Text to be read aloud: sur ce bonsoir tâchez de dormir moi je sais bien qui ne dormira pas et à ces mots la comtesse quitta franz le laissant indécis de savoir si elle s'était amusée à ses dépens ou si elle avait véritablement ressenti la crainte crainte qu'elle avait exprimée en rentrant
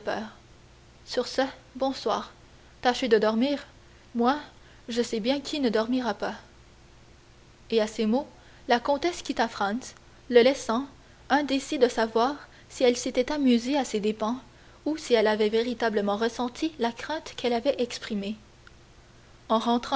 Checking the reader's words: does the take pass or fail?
fail